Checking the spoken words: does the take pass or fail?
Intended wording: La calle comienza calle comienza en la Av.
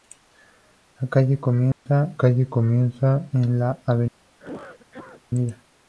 pass